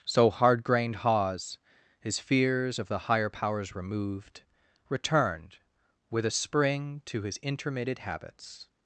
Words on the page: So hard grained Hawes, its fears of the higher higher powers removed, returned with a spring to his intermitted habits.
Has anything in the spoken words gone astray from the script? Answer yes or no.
yes